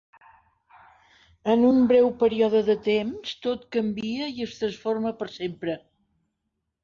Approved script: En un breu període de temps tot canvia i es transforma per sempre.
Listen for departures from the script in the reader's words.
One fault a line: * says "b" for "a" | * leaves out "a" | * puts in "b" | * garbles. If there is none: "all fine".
all fine